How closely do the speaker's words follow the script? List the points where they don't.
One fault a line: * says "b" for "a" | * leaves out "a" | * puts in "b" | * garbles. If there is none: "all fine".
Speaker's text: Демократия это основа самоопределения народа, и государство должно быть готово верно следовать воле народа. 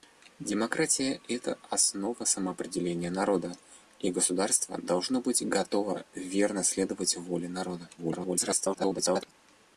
* garbles